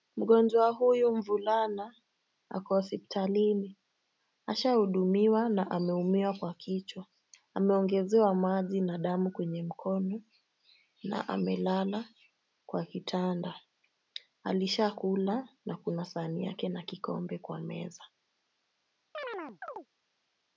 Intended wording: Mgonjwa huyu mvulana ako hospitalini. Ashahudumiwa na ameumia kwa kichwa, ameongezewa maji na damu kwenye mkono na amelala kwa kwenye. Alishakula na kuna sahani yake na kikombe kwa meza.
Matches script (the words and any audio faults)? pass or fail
fail